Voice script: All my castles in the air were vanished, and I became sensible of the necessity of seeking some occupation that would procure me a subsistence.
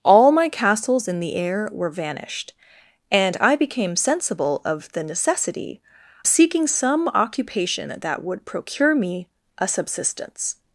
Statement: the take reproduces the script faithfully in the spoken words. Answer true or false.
false